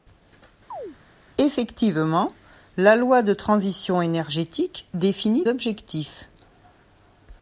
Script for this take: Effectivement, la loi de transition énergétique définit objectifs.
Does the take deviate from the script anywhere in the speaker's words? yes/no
no